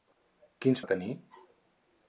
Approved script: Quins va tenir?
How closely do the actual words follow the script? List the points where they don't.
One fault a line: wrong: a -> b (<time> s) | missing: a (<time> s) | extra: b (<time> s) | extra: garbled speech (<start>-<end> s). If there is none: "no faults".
no faults